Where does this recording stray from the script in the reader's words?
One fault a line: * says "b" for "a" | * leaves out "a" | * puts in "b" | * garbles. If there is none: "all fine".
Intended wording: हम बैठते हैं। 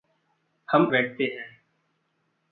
all fine